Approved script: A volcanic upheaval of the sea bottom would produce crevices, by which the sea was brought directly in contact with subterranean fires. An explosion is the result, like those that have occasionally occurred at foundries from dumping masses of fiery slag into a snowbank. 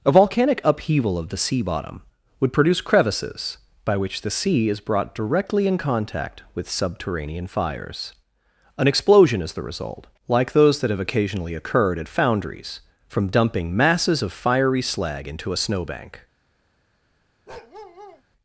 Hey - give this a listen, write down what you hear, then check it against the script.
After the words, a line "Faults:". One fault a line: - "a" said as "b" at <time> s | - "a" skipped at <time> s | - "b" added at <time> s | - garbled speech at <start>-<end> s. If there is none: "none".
A volcanic upheaval of the sea bottom would produce crevices, by which the sea is brought directly in contact with subterranean fires. An explosion is the result, like those that have occasionally occurred at foundries from dumping masses of fiery slag into a snowbank.
Faults:
- "was" said as "is" at 4.7 s